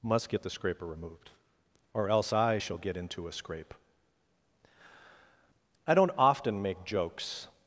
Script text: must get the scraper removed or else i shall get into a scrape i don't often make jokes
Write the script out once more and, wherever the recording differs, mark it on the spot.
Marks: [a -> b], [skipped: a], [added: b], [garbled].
must get the scraper removed or else i shall get into a scrape i don't often make jokes